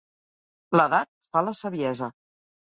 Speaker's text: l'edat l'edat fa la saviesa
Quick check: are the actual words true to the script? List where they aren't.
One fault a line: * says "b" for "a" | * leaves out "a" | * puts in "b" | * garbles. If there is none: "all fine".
* leaves out "l'edat"